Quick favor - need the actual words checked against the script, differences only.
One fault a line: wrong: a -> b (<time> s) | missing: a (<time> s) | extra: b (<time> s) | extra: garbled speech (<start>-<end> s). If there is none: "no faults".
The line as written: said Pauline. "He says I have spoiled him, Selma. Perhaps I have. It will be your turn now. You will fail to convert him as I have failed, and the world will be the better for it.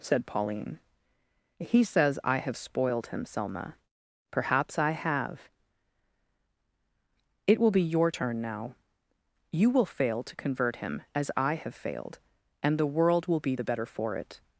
no faults